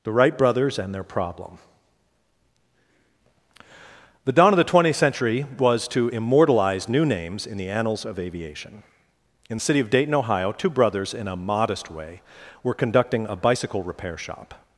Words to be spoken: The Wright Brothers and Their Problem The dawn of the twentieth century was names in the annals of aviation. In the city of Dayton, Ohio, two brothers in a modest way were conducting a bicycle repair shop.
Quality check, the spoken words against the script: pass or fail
fail